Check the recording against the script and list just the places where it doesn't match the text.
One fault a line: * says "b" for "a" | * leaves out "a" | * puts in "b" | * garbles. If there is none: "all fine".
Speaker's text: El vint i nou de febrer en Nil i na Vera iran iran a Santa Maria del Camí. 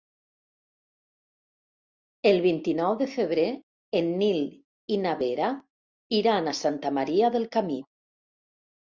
* leaves out "iran"